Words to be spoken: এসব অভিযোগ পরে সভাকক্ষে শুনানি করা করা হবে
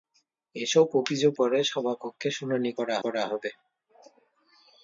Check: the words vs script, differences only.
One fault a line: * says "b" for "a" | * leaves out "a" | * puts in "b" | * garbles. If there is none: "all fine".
all fine